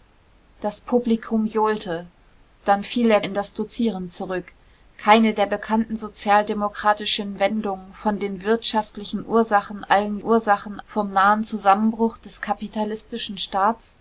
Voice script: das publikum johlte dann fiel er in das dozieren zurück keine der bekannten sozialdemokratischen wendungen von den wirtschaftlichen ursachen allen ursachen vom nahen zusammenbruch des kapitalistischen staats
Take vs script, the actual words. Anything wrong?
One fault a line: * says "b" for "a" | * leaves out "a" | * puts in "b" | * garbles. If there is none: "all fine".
all fine